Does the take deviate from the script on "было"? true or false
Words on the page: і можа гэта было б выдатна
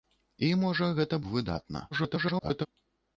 true